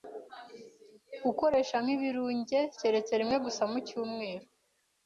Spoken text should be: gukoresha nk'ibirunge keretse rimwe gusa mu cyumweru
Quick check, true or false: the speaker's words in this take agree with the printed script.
true